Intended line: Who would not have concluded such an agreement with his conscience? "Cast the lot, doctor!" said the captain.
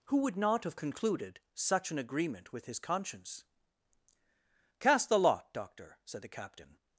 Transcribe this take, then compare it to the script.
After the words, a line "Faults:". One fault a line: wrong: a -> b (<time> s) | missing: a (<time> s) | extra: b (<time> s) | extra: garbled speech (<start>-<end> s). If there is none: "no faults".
Who would not have concluded such an agreement with his conscience? "Cast the lot, doctor!" said the captain.
Faults:
no faults